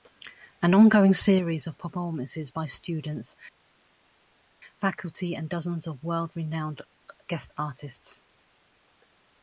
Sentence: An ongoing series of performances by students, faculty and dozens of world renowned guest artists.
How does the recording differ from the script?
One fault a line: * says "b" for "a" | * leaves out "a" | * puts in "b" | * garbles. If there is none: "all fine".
all fine